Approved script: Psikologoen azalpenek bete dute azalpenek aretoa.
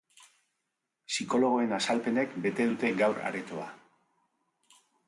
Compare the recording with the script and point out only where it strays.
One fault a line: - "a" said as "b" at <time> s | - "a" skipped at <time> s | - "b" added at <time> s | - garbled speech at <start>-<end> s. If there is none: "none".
- "azalpenek" said as "gaur" at 3.0 s